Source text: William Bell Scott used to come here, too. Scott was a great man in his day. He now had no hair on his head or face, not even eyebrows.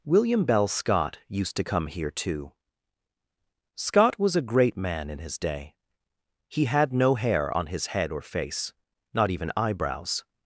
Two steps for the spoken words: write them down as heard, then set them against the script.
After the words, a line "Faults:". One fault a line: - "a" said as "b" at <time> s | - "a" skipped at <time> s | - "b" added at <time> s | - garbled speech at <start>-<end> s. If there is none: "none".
William Bell Scott used to come here, too. Scott was a great man in his day. He had no hair on his head or face, not even eyebrows.
Faults:
- "now" skipped at 6.7 s